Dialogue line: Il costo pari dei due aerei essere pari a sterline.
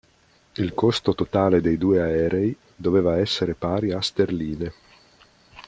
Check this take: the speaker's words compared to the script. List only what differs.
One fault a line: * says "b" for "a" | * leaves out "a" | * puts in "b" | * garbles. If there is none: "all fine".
* says "totale" for "pari"
* puts in "doveva"